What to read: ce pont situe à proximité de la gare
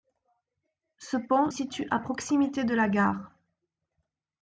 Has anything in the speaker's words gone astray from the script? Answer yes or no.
no